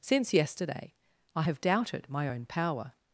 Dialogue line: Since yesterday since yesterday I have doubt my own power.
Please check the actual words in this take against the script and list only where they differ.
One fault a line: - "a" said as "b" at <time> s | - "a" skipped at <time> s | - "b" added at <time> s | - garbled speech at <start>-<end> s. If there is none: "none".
- "since yesterday" skipped at 0.9 s
- "doubt" said as "doubted" at 1.6 s